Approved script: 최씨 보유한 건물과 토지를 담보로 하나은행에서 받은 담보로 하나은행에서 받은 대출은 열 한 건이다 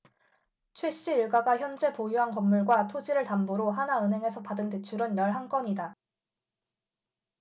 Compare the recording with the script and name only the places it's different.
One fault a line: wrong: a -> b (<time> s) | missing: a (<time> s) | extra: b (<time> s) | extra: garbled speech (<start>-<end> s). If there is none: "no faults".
extra: 일가가 현재 (1.1 s)
missing: 담보로 하나은행에서 받은 (4.7 s)